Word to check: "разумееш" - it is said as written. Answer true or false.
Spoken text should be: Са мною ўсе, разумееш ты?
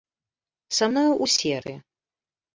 false